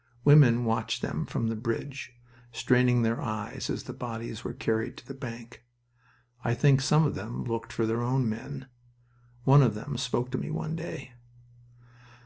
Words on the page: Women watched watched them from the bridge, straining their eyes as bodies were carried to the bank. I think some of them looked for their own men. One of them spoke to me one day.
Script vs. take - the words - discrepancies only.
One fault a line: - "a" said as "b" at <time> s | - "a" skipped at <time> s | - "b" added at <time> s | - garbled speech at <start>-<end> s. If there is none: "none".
- "watched" skipped at 1.0 s
- "the" added at 3.8 s